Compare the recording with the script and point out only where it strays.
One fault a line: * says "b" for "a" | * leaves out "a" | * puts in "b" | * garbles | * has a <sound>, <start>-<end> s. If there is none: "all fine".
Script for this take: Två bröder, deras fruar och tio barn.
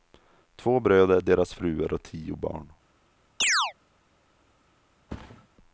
* has a chirp, 3.4-3.7 s
* has a thud, 5.1-5.5 s